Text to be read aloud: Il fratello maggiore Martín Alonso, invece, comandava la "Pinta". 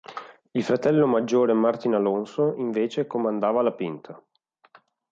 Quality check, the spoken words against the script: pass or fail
pass